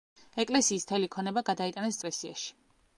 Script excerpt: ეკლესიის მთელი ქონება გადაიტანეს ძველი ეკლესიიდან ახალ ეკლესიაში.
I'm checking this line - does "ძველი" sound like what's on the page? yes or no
no